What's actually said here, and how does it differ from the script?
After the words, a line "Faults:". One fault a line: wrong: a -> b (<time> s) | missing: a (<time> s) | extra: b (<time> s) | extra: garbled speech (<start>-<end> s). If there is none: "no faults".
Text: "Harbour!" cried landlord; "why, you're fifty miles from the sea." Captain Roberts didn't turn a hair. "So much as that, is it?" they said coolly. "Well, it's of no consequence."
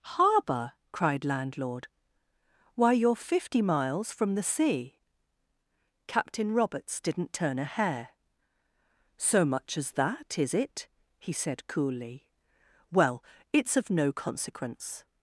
"Harbour!" cried landlord; "why, you're fifty miles from the sea." Captain Roberts didn't turn a hair. "So much as that, is it?" he said coolly. "Well, it's of no consequence."
Faults:
wrong: they -> he (11.2 s)